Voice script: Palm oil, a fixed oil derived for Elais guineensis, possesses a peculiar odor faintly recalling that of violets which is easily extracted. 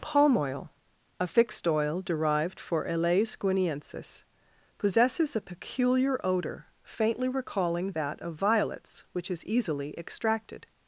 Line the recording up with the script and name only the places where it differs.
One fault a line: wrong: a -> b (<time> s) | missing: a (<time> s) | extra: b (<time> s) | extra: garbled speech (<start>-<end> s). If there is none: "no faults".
no faults